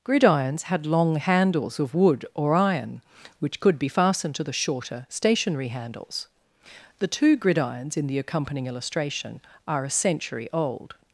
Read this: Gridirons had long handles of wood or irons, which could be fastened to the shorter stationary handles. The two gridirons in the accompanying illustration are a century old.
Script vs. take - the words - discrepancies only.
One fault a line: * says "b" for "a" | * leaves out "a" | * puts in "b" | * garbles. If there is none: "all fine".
* says "iron" for "irons"